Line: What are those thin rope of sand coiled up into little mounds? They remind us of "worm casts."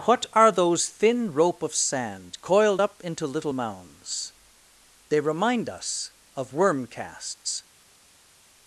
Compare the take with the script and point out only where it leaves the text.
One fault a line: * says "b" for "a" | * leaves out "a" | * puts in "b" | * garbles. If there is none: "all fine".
all fine